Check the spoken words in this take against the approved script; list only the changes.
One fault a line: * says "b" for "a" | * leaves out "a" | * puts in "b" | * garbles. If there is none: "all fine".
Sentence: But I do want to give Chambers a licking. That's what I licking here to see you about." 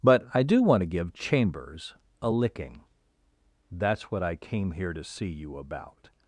* says "came" for "licking"